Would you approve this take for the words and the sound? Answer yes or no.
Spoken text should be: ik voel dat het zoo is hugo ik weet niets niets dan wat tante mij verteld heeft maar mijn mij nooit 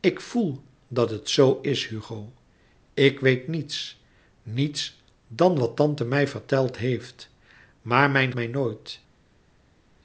yes